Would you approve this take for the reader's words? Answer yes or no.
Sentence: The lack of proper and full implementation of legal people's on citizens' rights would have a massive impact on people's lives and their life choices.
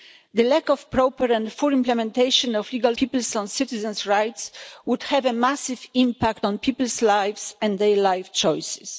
yes